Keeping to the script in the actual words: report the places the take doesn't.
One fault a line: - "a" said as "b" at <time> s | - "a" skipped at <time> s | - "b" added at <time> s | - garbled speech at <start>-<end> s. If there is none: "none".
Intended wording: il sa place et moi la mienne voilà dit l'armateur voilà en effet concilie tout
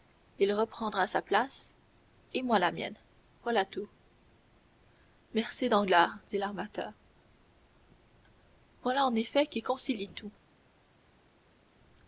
- "reprendra" added at 0.5 s
- "tout merci danglars" added at 3.7 s
- "qui" added at 9.5 s